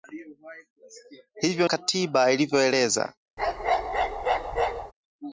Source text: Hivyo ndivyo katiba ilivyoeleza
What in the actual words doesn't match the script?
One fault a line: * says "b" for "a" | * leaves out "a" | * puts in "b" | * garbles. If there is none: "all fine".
* leaves out "ndivyo"